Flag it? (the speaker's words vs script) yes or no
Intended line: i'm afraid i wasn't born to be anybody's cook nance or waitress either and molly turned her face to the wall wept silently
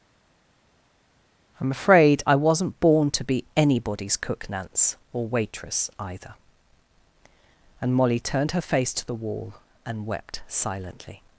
yes